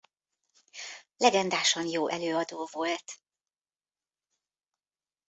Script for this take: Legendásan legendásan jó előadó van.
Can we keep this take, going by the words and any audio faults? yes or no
no